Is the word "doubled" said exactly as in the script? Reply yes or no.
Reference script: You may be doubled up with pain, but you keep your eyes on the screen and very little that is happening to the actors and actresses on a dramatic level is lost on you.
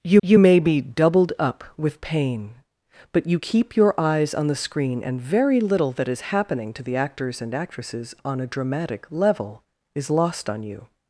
yes